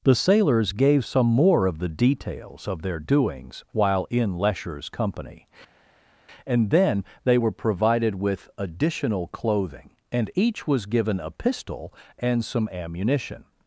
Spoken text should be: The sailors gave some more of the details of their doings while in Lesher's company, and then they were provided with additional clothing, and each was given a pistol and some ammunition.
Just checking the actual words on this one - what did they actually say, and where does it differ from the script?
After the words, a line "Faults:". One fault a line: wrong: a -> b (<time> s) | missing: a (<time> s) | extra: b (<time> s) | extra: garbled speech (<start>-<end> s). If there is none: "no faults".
The sailors gave some more of the details of their doings while in Lesher's company, and then they were provided with additional clothing, and each was given a pistol and some ammunition.
Faults:
no faults